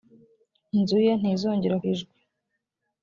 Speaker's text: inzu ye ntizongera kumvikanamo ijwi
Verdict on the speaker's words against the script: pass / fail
fail